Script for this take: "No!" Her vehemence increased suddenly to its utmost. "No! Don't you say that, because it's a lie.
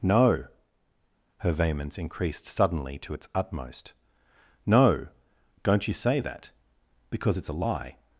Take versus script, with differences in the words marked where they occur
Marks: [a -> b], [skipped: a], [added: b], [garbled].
"No!" Her vehemence increased suddenly to its utmost. "No! Don't you say that, because it's a lie.